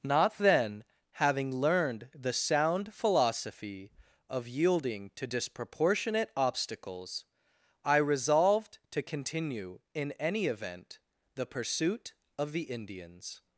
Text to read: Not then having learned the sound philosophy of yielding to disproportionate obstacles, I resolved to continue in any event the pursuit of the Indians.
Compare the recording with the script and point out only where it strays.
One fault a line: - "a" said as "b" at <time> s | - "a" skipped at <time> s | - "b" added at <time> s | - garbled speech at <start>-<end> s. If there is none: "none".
none